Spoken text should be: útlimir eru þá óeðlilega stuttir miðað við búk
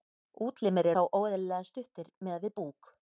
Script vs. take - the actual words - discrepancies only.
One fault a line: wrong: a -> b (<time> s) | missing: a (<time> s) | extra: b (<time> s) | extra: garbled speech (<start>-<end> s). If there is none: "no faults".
missing: eru (0.9 s)